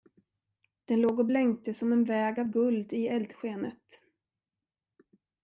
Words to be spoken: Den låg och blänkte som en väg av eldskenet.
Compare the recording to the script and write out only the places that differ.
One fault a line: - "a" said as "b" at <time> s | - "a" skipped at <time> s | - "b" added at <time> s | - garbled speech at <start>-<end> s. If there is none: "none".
- "guld i" added at 2.4 s